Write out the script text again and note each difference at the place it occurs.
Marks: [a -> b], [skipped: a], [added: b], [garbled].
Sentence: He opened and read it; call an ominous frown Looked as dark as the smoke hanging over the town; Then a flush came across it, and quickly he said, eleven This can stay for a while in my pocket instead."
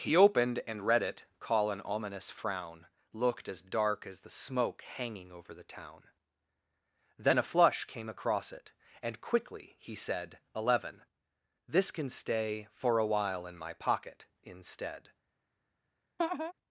He opened and read it; call an ominous frown Looked as dark as the smoke hanging over the town; Then a flush came across it, and quickly he said, eleven This can stay for a while in my pocket instead."